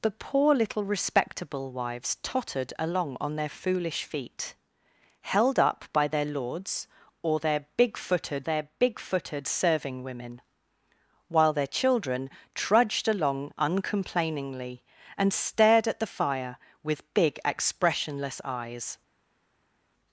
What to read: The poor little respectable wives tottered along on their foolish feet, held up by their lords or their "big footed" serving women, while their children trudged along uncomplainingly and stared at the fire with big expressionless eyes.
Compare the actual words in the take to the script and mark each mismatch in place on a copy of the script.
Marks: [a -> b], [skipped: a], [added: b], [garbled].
The poor little respectable wives tottered along on their foolish feet, held up by their lords or their "big footed" [added: their big footed] serving women, while their children trudged along uncomplainingly and stared at the fire with big expressionless eyes.